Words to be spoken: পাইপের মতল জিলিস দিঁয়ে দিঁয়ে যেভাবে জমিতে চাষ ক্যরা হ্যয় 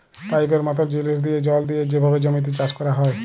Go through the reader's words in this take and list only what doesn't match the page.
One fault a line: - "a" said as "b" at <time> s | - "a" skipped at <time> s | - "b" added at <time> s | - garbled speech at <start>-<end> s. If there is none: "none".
- "জল" added at 1.5 s